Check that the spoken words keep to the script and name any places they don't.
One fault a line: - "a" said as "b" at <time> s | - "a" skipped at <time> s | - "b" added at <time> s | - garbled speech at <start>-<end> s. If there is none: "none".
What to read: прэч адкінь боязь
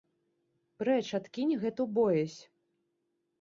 - "гэту" added at 1.6 s